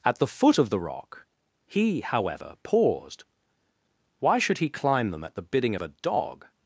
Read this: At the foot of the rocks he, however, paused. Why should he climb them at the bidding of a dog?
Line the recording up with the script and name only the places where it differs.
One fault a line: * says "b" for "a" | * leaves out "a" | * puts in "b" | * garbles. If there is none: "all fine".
* says "rock" for "rocks"